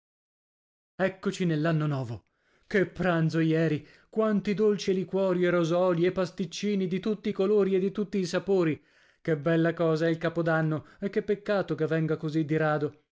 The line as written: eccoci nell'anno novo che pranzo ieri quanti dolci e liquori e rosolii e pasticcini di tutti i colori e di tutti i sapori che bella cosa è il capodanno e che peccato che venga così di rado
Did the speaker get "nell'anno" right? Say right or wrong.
right